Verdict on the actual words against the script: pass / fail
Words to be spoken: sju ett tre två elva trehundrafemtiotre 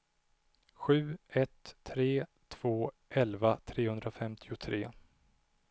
pass